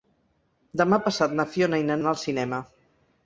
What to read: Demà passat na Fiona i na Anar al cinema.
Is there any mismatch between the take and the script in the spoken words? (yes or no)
no